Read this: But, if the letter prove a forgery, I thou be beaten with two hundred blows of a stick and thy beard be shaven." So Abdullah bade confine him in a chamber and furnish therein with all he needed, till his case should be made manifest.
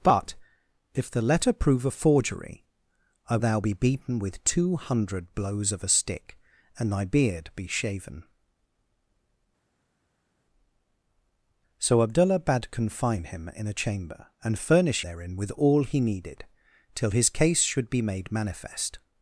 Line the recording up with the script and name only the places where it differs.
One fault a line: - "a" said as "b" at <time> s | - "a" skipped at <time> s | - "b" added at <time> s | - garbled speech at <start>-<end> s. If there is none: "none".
none